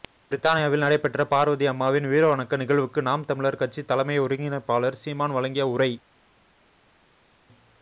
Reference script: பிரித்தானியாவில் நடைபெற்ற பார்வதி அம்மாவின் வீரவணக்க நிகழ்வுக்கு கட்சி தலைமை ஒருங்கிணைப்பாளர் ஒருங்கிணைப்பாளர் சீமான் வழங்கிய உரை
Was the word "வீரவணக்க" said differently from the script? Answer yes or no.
no